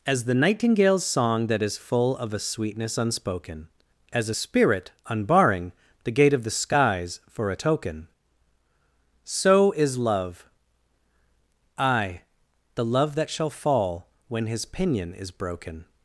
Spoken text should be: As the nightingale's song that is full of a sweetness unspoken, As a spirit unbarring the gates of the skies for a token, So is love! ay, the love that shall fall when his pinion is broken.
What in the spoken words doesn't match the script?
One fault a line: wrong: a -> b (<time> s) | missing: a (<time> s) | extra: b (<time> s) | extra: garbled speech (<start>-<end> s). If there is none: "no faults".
wrong: gates -> gate (6.1 s)